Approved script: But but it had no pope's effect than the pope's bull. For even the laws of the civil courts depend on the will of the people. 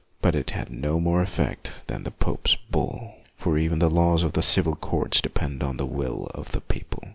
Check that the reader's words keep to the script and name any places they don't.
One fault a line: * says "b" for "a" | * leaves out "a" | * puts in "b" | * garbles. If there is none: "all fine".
* leaves out "but"
* says "more" for "pope's"